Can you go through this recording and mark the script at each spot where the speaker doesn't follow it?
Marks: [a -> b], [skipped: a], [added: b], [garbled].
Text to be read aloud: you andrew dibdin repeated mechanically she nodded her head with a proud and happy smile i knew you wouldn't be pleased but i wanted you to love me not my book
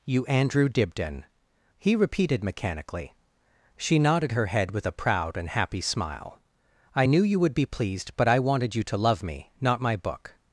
you andrew dibdin [added: he] repeated mechanically she nodded her head with a proud and happy smile i knew you [wouldn't -> would] be pleased but i wanted you to love me not my book